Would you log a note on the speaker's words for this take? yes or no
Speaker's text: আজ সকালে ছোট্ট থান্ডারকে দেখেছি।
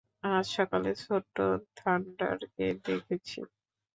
no